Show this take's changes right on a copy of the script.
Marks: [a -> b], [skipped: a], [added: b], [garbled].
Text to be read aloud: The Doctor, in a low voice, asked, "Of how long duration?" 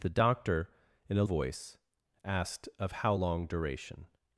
The Doctor, in a [skipped: low] voice, asked, "Of how long duration?"